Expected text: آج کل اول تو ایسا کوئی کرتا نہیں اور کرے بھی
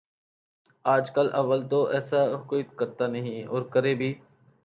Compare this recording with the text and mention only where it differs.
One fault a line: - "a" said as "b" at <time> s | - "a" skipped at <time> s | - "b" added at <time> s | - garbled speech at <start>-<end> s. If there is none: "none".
none